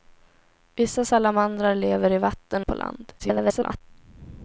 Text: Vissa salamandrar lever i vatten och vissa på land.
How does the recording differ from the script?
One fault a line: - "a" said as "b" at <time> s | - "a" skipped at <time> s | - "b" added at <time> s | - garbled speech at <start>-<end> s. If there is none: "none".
- "och vissa" skipped at 2.7 s
- garbled speech at 3.2-3.8 s